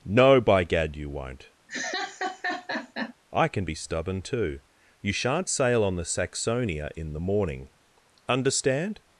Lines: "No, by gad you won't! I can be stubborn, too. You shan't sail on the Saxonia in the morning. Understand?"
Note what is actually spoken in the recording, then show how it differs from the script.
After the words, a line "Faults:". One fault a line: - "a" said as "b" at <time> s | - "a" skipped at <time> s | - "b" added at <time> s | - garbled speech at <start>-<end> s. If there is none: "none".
"No, by gad you won't! I can be stubborn, too. You shan't sail on the Saxonia in the morning. Understand?"
Faults:
none